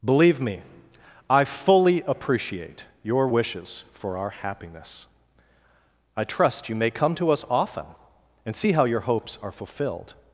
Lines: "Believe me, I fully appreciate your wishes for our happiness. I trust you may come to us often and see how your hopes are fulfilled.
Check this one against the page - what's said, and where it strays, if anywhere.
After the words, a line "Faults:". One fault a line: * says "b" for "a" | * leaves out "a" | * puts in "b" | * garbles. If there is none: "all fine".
"Believe me, I fully appreciate your wishes for our happiness. I trust you may come to us often and see how your hopes are fulfilled.
Faults:
all fine